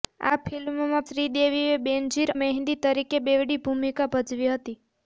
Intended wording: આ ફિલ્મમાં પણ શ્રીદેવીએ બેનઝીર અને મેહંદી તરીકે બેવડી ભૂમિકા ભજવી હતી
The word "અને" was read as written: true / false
false